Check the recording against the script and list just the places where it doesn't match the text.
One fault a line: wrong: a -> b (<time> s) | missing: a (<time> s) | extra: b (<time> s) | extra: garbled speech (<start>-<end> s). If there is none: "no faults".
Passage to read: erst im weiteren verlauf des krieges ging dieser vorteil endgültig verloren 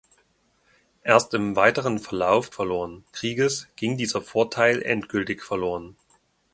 wrong: des -> verloren (2.5 s)